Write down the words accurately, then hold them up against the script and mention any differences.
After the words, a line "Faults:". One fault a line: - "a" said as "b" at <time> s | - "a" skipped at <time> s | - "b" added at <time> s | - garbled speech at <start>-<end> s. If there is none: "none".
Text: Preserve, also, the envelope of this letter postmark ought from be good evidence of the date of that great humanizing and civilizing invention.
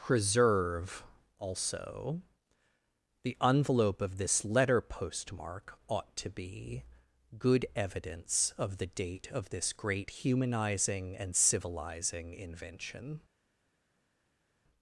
Preserve, also, the envelope of this letter postmark ought to be good evidence of the date of this great humanizing and civilizing invention.
Faults:
- "from" said as "to" at 6.2 s
- "that" said as "this" at 9.5 s